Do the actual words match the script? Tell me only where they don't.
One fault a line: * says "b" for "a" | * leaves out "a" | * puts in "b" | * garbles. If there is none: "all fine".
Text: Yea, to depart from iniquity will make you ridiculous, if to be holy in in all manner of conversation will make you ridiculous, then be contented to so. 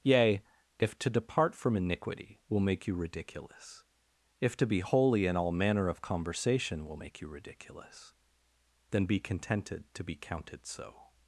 * puts in "if"
* leaves out "in"
* puts in "be counted"